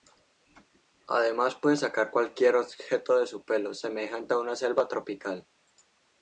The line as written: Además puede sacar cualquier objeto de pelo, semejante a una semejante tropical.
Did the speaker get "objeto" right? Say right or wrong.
right